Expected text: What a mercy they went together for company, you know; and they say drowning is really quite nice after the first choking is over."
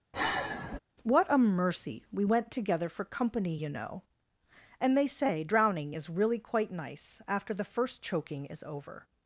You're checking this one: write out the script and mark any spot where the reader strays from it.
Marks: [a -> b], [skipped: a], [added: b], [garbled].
What a mercy [they -> we] went together for company, you know; and they say drowning is really quite nice after the first choking is over."